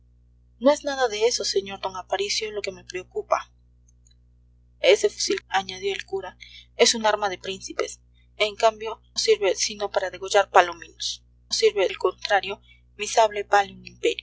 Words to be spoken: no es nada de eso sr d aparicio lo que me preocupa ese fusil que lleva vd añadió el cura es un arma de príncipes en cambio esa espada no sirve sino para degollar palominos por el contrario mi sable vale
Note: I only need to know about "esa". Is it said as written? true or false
false